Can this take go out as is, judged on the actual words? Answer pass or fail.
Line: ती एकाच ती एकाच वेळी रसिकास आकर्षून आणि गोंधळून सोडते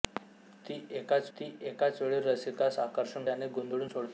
pass